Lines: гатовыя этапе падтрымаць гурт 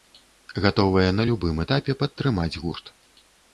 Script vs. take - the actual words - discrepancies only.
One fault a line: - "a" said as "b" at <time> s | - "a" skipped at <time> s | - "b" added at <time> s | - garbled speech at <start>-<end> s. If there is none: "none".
- "на любым" added at 1.2 s